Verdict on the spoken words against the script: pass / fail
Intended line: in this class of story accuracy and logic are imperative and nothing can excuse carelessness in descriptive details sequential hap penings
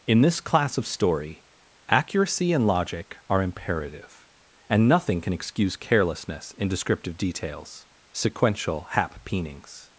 pass